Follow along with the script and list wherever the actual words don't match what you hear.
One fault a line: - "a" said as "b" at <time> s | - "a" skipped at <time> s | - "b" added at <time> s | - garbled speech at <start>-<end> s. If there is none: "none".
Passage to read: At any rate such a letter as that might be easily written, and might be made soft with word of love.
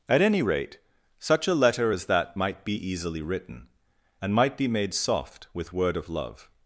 none